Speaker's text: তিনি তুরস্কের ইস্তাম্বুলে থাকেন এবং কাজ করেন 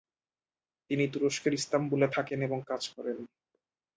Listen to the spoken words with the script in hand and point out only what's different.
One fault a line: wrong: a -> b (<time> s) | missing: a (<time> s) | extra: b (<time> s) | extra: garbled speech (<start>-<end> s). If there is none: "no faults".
no faults